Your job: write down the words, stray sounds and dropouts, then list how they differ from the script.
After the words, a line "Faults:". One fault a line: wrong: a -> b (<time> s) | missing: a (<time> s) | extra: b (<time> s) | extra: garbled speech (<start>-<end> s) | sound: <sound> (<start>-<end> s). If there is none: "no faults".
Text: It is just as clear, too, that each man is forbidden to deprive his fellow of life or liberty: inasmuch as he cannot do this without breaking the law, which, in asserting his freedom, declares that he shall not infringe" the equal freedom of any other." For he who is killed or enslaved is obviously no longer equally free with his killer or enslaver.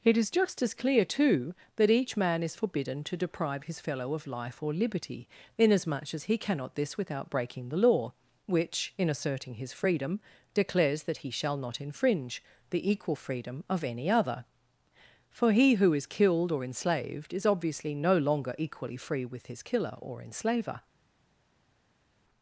It is just as clear, too, that each man is forbidden to deprive his fellow of life or liberty: inasmuch as he cannot this without breaking the law, which, in asserting his freedom, declares that he shall not infringe" the equal freedom of any other." For he who is killed or enslaved is obviously no longer equally free with his killer or enslaver.
Faults:
missing: do (6.7 s)